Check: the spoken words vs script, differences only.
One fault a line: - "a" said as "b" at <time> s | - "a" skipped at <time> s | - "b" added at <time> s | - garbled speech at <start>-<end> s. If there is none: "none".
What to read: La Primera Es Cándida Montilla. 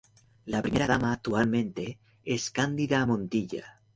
- "Dama actualmente" added at 0.9 s